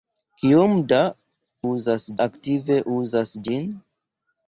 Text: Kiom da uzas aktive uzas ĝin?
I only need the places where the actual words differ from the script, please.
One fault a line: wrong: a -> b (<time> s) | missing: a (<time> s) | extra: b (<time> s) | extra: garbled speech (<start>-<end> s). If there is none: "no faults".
no faults